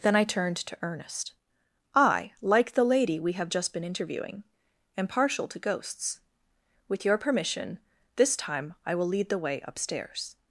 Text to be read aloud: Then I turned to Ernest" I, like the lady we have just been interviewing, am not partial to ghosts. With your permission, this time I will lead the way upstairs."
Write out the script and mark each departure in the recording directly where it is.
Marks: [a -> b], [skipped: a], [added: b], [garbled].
Then I turned to Ernest" I, like the lady we have just been interviewing, am [skipped: not] partial to ghosts. With your permission, this time I will lead the way upstairs."